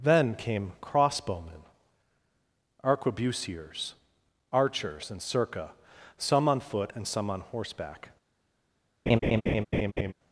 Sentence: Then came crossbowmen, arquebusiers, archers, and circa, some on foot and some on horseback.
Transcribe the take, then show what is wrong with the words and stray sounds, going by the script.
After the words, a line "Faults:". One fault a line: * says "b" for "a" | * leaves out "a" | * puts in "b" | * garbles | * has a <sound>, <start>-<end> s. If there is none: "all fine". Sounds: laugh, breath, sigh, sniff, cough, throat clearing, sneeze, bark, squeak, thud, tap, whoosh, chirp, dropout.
Then came crossbowmen, arquebusiers, archers, and circa, some on foot and some on horseback.
Faults:
* has a laugh, 9.1-10.1 s